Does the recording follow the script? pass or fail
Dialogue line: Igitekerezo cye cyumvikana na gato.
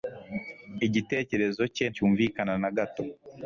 pass